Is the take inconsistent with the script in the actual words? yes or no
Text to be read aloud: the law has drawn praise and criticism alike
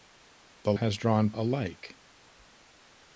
yes